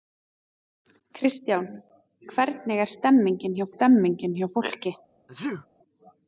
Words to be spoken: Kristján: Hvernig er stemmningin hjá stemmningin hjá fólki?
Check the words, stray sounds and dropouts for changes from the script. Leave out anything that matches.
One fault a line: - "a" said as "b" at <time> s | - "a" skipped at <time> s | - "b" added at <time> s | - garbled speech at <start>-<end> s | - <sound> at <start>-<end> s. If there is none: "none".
- sneeze at 5.3-5.7 s